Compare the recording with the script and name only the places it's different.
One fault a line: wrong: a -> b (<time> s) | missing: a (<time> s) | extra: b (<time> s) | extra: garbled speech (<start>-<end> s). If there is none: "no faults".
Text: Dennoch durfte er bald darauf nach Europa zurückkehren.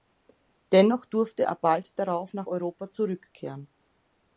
no faults